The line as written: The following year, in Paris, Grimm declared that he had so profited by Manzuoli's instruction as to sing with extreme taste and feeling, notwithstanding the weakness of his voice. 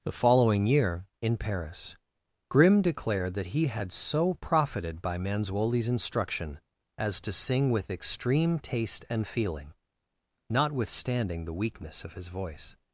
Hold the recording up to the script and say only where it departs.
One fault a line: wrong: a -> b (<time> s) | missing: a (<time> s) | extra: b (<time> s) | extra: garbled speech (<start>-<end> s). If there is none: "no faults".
no faults